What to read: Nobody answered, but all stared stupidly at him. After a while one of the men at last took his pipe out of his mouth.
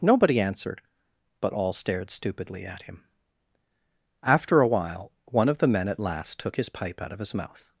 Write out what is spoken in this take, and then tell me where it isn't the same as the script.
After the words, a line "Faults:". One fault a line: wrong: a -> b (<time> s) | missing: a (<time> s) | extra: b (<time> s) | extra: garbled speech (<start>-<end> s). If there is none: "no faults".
Nobody answered, but all stared stupidly at him. After a while one of the men at last took his pipe out of his mouth.
Faults:
no faults